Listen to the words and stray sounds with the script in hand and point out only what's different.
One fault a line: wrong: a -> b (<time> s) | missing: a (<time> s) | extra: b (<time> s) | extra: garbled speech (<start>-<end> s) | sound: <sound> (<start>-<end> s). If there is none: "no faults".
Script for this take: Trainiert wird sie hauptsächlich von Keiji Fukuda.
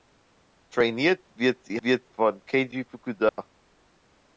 wrong: hauptsächlich -> wird (1.8 s)
sound: dropout (3.3-3.4 s)